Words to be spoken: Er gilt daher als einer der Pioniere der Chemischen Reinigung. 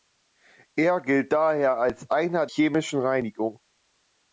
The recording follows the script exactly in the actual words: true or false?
false